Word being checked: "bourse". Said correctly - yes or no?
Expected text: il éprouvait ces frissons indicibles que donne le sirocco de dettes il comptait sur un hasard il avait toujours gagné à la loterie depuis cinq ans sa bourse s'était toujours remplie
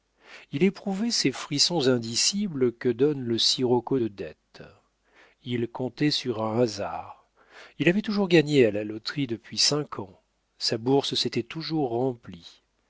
yes